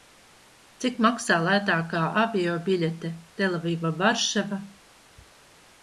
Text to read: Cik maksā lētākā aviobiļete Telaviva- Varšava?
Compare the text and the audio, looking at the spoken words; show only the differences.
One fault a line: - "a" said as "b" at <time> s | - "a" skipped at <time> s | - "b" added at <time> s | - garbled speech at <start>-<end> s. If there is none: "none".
none